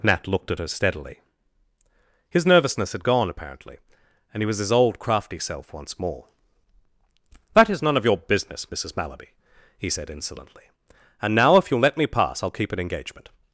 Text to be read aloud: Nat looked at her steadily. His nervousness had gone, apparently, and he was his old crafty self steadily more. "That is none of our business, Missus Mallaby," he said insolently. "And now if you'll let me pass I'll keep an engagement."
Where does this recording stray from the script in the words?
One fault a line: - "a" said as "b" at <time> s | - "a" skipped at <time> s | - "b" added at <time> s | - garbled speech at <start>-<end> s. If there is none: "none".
- "steadily" said as "once" at 5.7 s
- "our" said as "your" at 8.1 s